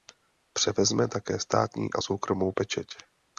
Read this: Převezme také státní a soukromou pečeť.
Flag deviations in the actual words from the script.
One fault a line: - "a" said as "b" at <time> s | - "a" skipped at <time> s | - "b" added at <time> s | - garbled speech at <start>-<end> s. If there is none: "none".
none